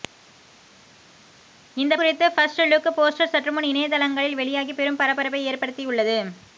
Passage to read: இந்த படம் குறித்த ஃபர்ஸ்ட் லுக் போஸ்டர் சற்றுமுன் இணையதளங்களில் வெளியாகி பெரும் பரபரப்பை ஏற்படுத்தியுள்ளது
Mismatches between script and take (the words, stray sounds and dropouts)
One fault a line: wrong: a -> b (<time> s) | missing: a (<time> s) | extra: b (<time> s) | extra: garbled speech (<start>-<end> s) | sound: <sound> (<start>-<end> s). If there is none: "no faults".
missing: படம் (1.9 s)